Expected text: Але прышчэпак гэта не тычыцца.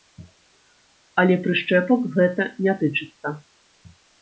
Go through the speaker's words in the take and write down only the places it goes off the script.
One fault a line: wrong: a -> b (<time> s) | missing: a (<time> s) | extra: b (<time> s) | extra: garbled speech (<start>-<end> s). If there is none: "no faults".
no faults